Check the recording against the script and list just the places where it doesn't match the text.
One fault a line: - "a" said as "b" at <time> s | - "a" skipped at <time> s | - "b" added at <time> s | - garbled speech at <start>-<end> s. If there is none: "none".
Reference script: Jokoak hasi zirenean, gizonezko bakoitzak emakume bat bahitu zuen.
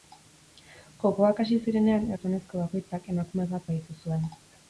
none